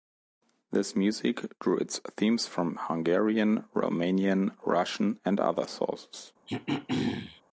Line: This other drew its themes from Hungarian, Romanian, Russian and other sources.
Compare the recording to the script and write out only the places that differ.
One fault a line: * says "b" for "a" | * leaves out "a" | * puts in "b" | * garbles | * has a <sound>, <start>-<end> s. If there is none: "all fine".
* says "music" for "other"
* has a throat clearing, 6.5-7.4 s